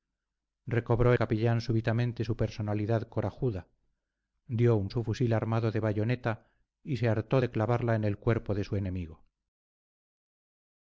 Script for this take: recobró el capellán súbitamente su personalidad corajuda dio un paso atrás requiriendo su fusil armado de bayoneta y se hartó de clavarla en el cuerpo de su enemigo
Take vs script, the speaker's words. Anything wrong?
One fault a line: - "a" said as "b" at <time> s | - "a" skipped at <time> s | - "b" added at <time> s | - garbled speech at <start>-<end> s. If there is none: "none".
- "el" skipped at 1.1 s
- "paso atrás requiriendo" skipped at 4.9 s